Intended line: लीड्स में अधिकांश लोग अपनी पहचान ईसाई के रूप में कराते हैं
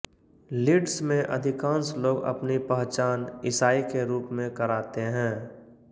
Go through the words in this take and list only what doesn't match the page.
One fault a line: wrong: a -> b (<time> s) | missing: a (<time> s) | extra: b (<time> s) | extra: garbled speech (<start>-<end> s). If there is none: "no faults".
no faults